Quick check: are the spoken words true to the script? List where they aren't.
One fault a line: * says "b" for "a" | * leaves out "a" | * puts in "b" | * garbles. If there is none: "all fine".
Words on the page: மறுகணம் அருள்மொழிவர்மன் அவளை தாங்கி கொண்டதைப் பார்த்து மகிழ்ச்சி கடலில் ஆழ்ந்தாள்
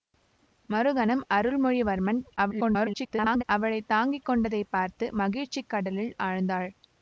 * garbles